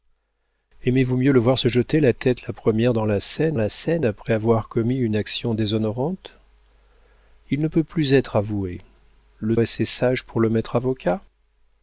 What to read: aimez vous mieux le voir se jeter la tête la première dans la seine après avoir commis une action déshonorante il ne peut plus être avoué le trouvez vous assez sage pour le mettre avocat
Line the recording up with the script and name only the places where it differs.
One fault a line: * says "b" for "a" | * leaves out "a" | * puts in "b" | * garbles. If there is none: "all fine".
* puts in "la seine"
* leaves out "trouvez vous"